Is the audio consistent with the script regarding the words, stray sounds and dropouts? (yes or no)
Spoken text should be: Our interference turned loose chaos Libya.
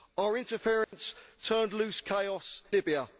no